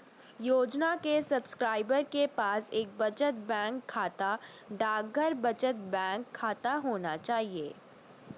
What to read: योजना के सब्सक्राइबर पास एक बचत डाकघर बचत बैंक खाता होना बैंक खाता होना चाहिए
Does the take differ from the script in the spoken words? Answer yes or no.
yes